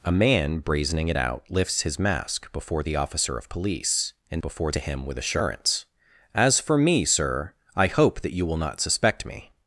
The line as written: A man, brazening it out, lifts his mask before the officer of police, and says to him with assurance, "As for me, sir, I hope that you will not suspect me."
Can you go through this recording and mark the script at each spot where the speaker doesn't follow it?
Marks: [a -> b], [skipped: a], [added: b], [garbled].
A man, brazening it out, lifts his mask before the officer of police, and [says -> before] to him with assurance, "As for me, sir, I hope that you will not suspect me."